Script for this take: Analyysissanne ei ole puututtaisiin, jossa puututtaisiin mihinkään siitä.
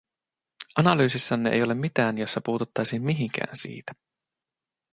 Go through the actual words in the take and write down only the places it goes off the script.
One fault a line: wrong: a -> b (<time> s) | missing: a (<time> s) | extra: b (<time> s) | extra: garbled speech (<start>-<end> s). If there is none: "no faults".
wrong: puututtaisiin -> mitään (1.7 s)